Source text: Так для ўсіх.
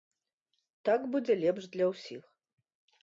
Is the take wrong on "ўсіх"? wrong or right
right